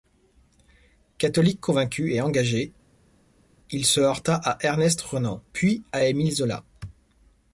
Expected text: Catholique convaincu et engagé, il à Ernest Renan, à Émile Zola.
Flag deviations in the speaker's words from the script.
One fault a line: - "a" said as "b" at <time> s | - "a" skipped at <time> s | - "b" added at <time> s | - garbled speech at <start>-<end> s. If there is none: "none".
- "se heurta" added at 3.9 s
- "puis" added at 5.5 s